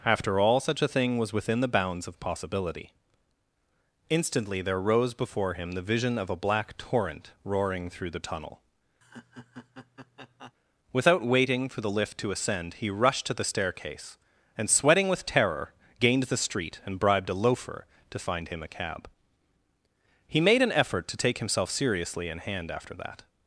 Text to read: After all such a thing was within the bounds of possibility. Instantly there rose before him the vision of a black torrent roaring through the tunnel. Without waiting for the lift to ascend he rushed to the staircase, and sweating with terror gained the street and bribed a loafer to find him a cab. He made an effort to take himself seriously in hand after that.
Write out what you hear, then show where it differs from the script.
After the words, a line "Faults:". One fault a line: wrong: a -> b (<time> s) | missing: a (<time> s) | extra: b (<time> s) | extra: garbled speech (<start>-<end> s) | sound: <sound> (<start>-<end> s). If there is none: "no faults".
After all such a thing was within the bounds of possibility. Instantly there rose before him the vision of a black torrent roaring through the tunnel. Without waiting for the lift to ascend he rushed to the staircase, and sweating with terror gained the street and bribed a loafer to find him a cab. He made an effort to take himself seriously in hand after that.
Faults:
sound: laugh (9.0-10.5 s)